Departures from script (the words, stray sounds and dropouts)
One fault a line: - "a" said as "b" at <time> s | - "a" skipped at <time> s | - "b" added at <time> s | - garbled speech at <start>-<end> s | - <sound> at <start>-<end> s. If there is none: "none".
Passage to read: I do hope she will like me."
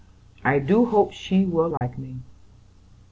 - dropout at 1.8-1.8 s